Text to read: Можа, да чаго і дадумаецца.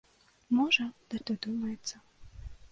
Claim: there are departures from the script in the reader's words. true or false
true